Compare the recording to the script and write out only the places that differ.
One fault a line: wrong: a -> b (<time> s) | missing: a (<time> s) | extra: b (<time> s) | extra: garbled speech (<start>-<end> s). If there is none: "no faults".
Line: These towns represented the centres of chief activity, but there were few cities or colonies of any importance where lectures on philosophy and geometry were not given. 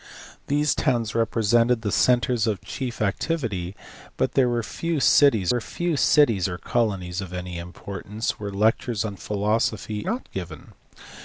extra: were few cities (5.5 s)
missing: and geometry were (10.0 s)